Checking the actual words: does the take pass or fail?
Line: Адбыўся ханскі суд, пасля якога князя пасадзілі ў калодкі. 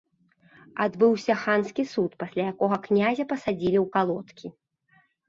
pass